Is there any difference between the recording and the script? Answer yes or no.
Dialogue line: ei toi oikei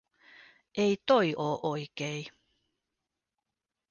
yes